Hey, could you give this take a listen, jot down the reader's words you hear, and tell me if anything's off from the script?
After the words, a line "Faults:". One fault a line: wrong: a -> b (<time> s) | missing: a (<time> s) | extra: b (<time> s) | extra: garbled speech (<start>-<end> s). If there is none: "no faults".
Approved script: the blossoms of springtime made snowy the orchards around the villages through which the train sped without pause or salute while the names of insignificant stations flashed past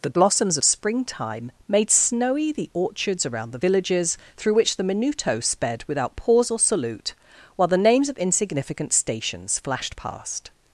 the blossoms of springtime made snowy the orchards around the villages through which the minuto sped without pause or salute while the names of insignificant stations flashed past
Faults:
wrong: train -> minuto (4.8 s)